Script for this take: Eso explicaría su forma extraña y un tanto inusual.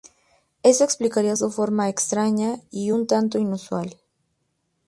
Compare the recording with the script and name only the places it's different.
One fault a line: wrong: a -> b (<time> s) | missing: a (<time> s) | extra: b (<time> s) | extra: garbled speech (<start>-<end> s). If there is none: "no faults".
no faults